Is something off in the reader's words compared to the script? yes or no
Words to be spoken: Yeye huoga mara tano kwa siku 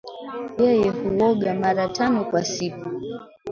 no